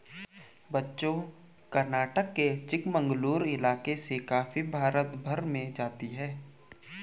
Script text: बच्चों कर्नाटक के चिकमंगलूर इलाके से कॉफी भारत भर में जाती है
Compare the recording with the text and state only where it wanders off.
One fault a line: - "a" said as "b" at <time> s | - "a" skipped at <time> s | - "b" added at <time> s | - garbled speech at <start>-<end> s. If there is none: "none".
none